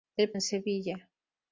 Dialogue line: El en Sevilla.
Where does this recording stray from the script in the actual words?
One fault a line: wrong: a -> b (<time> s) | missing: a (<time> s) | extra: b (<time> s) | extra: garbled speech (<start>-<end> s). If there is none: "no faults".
no faults